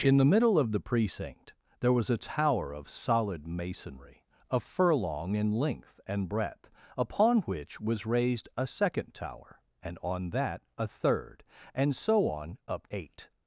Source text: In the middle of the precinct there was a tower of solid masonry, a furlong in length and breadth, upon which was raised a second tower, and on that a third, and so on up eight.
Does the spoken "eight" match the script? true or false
true